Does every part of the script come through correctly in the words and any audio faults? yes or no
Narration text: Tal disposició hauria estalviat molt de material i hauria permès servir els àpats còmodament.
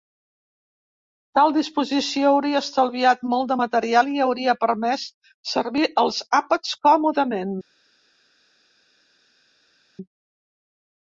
yes